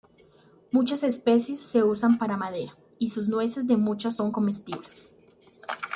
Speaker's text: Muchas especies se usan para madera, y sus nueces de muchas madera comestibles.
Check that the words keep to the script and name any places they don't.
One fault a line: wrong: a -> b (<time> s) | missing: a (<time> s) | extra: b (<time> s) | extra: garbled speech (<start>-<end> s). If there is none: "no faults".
wrong: madera -> son (4.1 s)